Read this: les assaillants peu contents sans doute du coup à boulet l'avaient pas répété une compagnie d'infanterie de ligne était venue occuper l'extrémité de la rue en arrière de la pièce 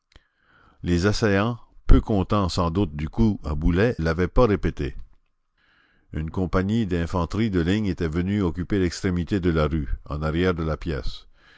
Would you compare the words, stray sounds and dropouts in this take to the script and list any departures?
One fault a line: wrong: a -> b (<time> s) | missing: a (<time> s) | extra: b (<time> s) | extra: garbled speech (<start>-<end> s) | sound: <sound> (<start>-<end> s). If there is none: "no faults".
no faults